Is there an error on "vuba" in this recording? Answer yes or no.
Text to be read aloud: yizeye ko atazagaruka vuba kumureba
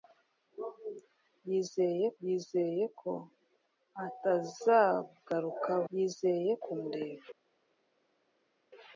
yes